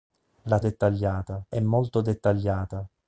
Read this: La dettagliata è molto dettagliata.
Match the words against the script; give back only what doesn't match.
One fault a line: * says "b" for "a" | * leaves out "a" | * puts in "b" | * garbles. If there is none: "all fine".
all fine